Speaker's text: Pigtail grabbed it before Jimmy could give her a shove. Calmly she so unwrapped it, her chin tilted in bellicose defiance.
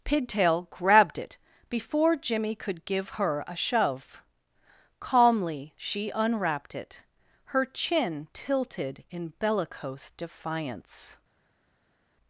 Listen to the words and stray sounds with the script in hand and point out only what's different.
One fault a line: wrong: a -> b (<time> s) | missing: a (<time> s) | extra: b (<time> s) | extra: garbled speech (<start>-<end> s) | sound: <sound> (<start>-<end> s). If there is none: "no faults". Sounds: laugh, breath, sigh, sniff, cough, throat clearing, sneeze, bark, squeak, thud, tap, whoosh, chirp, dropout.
missing: so (6.1 s)